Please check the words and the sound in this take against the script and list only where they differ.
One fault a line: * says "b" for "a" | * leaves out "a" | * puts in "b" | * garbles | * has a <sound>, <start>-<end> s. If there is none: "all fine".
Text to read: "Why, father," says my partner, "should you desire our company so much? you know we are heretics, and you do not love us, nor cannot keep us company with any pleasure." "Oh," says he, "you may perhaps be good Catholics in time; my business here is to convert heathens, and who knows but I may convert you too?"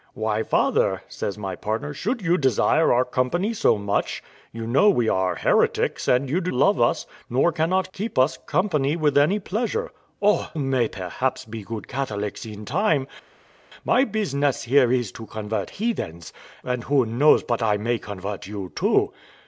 * leaves out "not"
* leaves out "says he you"